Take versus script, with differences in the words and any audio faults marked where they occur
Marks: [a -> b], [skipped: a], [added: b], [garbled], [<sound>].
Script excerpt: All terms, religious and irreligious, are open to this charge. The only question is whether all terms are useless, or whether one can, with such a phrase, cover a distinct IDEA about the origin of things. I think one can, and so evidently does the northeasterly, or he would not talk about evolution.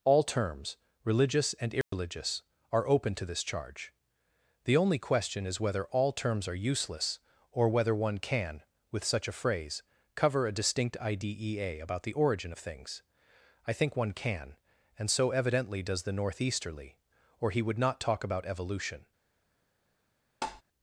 All terms, religious and irreligious, [dropout] are open to this charge. The only question is whether all terms are useless, or whether one can, with such a phrase, cover a distinct IDEA about the origin of things. I think one can, and so evidently does the northeasterly, or he would not talk about evolution. [tap]